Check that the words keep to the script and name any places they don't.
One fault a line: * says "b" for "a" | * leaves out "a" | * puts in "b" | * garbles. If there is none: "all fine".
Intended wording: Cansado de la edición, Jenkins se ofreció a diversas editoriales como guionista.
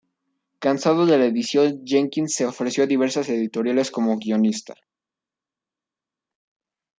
all fine